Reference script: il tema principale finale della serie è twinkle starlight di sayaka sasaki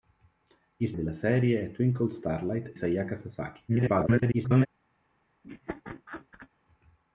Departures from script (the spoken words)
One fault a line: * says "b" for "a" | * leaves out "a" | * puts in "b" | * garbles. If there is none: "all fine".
* leaves out "tema principale finale"
* leaves out "di"
* garbles